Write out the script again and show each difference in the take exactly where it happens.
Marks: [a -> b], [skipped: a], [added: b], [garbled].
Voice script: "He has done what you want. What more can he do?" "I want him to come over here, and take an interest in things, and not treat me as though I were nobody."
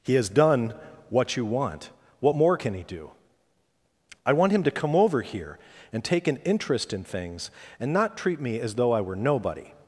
"He has done what you want. What more can he do?" "I want him to come over here, and take an interest in things, and not treat me as though I were nobody."